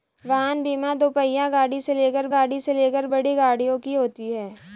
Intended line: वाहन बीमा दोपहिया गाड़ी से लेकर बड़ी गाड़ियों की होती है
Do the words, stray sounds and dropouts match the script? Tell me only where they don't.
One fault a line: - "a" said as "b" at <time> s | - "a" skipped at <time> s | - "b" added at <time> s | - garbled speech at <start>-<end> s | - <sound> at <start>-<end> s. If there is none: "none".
- "गाड़ी से लेकर" added at 2.3 s